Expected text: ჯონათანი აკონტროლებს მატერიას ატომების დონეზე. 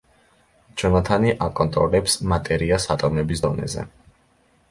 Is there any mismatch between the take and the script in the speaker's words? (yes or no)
no